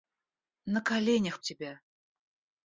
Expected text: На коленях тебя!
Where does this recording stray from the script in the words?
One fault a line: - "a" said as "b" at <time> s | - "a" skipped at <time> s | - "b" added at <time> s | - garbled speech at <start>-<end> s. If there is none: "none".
none